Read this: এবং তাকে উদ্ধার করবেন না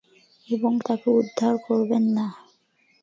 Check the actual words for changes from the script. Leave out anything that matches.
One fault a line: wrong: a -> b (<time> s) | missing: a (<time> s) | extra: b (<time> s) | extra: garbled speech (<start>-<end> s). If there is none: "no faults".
no faults